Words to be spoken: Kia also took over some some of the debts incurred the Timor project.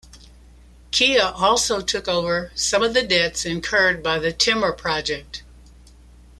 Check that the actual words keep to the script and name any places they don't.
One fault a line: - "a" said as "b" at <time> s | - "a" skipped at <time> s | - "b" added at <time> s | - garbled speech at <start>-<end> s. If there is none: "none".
- "some" skipped at 2.8 s
- "by" added at 4.0 s